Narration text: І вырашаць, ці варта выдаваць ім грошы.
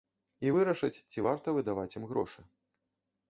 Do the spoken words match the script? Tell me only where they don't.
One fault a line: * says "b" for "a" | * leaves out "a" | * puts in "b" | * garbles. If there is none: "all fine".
all fine